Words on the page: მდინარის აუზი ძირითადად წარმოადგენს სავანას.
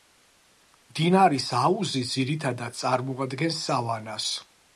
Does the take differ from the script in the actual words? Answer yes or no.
no